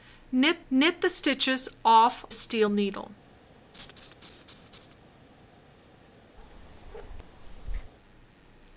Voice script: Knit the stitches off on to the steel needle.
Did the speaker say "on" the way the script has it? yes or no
no